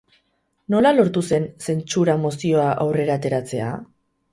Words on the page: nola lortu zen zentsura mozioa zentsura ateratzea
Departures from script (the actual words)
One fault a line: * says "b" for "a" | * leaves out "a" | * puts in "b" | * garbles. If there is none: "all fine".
* says "aurrera" for "zentsura"